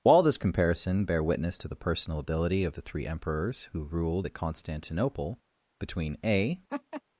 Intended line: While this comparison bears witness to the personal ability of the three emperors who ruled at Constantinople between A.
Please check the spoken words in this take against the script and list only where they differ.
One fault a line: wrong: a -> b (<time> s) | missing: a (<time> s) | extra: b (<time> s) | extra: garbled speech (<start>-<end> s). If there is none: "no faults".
wrong: bears -> bear (1.1 s)